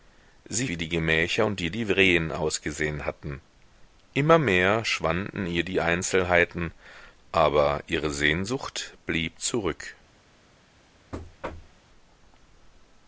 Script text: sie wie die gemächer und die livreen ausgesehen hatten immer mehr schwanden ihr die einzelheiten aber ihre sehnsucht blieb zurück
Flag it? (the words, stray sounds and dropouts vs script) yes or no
yes